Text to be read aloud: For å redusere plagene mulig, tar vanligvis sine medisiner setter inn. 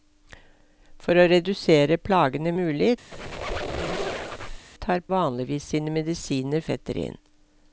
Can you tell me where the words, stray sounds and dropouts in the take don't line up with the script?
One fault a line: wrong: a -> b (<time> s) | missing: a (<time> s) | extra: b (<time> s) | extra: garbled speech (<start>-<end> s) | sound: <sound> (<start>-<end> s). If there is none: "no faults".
sound: squeak (3.1-4.7 s)